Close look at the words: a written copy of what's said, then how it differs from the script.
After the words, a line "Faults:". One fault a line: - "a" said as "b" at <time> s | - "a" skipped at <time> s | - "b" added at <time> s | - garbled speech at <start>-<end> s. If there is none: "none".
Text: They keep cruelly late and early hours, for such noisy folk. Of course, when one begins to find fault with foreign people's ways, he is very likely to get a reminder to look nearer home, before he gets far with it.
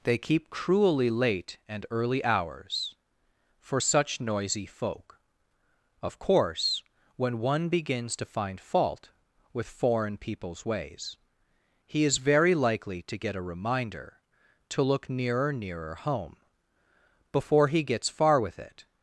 They keep cruelly late and early hours, for such noisy folk. Of course, when one begins to find fault with foreign people's ways, he is very likely to get a reminder to look nearer nearer home, before he gets far with it.
Faults:
- "nearer" added at 15.5 s